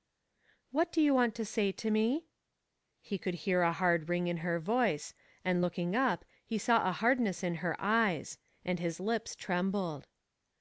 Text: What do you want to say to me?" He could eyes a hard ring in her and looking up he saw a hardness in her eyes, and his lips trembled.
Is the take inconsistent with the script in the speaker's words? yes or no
yes